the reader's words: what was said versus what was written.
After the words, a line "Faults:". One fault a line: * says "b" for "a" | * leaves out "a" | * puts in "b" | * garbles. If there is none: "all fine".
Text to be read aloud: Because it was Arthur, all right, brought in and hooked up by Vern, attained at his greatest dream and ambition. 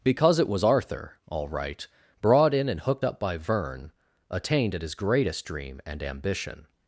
Because it was Arthur, all right, brought in and hooked up by Vern, attained at his greatest dream and ambition.
Faults:
all fine